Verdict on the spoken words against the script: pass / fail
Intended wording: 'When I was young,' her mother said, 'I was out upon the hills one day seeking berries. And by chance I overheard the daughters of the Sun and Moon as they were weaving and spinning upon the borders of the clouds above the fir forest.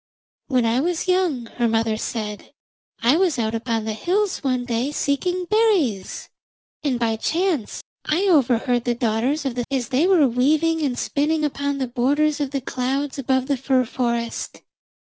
fail